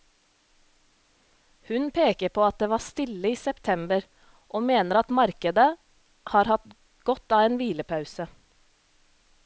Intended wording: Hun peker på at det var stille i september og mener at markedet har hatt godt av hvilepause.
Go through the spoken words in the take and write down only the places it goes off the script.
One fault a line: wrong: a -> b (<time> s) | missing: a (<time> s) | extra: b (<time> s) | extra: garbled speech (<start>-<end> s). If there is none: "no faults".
extra: en (7.5 s)